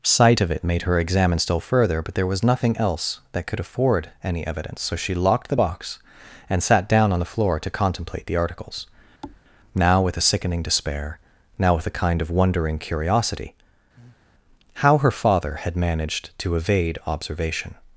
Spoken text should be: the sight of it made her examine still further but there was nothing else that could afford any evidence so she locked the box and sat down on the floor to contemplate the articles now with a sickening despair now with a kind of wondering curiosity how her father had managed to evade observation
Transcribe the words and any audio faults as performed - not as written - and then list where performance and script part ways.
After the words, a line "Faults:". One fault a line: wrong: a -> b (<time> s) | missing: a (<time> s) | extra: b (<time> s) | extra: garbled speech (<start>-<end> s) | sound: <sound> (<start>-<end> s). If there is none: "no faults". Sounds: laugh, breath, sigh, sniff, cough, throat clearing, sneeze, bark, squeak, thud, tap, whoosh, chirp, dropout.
sight of it made her examine still further but there was nothing else that could afford any evidence so she locked the box and sat down on the floor to contemplate the articles now with a sickening despair now with a kind of wondering curiosity how her father had managed to evade observation
Faults:
missing: the (0.1 s)
sound: thud (9.2-9.4 s)
sound: breath (14.0-14.3 s)